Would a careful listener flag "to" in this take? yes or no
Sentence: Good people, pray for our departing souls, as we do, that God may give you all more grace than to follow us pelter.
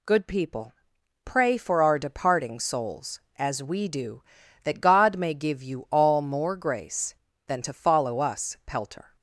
no